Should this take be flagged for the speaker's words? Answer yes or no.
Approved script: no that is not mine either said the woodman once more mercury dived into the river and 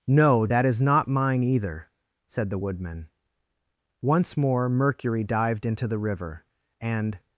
no